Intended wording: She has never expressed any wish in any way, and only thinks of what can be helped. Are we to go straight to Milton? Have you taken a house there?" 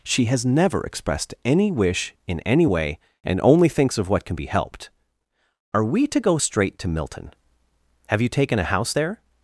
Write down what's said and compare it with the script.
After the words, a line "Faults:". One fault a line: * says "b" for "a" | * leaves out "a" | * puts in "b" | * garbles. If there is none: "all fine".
She has never expressed any wish in any way, and only thinks of what can be helped. Are we to go straight to Milton? Have you taken a house there?"
Faults:
all fine